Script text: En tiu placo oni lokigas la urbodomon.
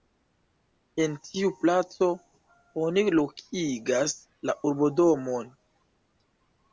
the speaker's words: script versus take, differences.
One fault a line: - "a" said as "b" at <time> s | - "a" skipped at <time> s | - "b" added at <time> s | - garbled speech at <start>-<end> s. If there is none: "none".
none